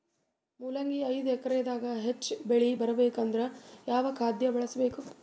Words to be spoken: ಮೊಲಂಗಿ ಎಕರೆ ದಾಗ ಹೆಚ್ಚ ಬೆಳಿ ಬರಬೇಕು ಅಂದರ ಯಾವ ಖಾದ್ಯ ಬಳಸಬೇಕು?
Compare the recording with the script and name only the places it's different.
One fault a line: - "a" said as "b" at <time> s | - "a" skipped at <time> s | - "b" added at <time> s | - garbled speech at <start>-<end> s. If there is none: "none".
- "ಐದು" added at 1.1 s